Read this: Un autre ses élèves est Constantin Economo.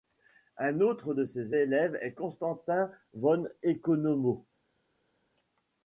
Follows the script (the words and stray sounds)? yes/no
no